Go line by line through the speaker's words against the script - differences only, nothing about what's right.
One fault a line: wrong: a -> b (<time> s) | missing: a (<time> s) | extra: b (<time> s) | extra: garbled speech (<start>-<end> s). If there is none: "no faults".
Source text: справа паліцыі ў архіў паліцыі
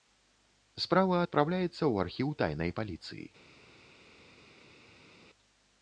wrong: паліцыі -> адпраўляецца (1.2 s)
extra: тайнай (2.4 s)